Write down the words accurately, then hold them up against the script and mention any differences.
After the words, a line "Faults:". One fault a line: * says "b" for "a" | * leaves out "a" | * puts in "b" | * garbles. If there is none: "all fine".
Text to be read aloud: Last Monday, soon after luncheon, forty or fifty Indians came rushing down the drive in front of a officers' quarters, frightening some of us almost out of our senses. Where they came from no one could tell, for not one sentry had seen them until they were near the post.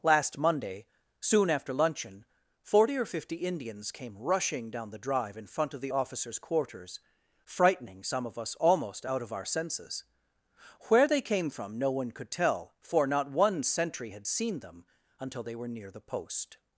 Last Monday, soon after luncheon, forty or fifty Indians came rushing down the drive in front of the officers' quarters, frightening some of us almost out of our senses. Where they came from no one could tell, for not one sentry had seen them until they were near the post.
Faults:
* says "the" for "a"